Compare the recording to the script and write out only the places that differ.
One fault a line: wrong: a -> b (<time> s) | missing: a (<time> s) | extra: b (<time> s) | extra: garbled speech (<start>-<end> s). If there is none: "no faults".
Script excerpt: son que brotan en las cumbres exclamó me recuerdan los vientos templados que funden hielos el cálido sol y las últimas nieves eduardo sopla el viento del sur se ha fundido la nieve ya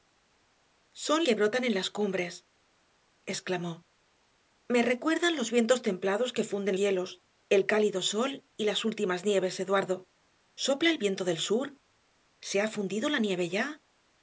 no faults